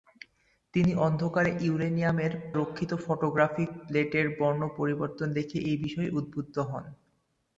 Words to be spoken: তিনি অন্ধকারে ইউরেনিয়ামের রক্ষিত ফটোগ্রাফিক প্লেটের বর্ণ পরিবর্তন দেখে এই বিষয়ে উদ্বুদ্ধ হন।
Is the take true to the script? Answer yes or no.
yes